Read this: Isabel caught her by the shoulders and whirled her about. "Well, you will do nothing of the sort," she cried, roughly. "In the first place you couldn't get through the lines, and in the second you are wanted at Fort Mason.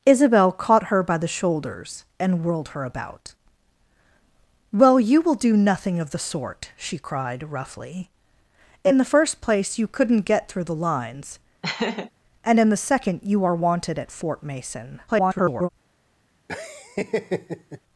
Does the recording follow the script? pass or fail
fail